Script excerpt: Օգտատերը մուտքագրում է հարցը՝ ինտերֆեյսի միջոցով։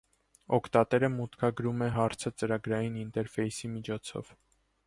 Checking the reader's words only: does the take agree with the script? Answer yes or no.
no